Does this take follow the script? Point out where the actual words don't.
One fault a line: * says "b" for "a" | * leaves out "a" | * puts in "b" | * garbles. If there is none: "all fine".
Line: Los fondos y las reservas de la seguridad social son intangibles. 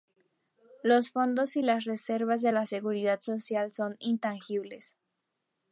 all fine